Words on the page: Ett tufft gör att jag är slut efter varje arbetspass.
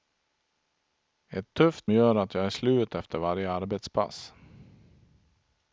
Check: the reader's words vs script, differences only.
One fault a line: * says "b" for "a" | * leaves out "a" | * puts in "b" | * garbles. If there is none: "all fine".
all fine